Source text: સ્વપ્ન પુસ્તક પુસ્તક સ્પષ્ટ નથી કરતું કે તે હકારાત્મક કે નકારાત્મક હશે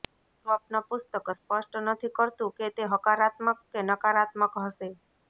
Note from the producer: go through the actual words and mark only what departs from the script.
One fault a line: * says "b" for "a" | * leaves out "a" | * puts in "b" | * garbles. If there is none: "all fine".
* leaves out "પુસ્તક"